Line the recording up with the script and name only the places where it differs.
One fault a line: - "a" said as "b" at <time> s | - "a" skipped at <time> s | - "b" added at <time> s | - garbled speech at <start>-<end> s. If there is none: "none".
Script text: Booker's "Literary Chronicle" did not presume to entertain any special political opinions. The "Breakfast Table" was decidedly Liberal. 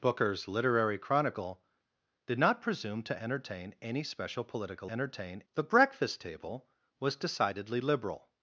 - "opinions" said as "entertain" at 4.9 s